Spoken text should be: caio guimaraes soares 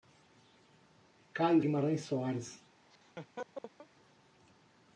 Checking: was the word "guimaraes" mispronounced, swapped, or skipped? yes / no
no